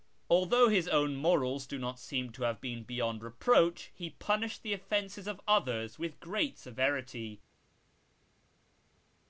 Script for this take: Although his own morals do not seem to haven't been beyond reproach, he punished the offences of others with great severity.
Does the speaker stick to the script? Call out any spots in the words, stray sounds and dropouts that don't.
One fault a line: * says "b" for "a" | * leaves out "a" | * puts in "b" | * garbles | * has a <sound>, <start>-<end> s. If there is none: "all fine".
* says "have" for "haven't"